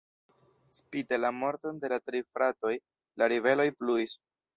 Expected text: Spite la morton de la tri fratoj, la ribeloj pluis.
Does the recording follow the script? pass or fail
pass